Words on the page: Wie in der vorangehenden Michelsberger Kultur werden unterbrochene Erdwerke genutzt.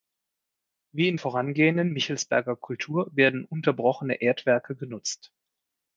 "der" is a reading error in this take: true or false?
true